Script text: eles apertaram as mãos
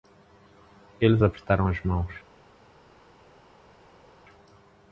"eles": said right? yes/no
yes